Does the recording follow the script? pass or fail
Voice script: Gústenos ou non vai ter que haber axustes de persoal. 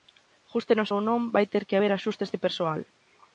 pass